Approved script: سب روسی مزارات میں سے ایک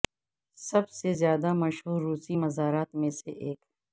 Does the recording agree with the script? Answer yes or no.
no